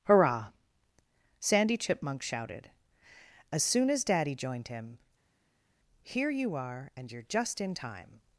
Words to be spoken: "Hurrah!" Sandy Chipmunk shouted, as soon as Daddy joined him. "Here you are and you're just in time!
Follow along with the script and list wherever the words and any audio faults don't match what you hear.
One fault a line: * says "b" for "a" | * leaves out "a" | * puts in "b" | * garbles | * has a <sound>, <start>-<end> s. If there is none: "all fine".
all fine